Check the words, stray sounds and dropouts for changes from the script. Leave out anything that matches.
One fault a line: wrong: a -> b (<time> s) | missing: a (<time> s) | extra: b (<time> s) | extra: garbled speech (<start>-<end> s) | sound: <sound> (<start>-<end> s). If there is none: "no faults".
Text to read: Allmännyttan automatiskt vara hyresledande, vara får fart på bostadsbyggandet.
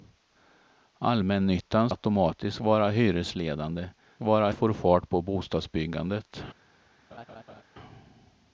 sound: laugh (7.1-7.6 s)